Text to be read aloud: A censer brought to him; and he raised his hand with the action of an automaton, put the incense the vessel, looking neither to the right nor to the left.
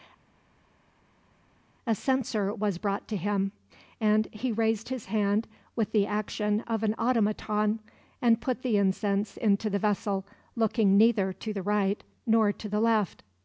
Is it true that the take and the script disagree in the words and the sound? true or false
true